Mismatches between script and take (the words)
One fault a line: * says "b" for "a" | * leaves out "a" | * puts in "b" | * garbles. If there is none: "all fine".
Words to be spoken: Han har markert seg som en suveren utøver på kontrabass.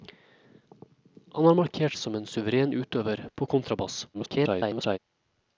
* leaves out "seg"
* garbles